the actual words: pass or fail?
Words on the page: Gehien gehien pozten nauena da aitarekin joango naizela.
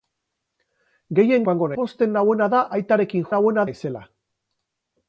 fail